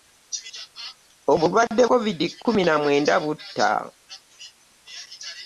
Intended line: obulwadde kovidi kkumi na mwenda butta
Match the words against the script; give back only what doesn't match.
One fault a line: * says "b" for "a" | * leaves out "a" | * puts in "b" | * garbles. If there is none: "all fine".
all fine